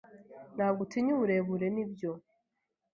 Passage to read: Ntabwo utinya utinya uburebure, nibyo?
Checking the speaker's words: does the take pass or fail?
fail